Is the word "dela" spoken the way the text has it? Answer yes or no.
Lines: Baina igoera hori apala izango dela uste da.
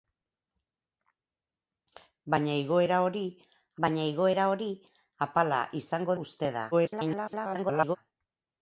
no